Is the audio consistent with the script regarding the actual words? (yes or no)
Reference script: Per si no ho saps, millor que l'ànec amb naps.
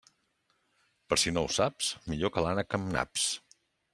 yes